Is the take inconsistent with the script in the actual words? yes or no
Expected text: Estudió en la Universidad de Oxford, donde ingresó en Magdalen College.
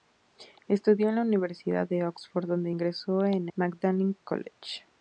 no